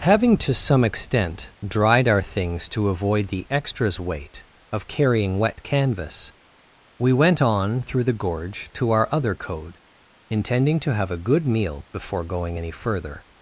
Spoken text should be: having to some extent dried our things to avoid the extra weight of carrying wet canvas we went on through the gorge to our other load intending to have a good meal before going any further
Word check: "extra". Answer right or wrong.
wrong